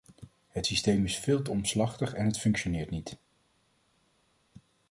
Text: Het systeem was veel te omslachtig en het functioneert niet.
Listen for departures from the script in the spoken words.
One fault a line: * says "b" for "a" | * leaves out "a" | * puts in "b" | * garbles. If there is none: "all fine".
* says "is" for "was"